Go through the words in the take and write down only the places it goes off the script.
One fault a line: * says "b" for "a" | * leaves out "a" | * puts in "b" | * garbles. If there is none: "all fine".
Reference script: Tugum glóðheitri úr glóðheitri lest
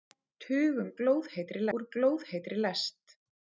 all fine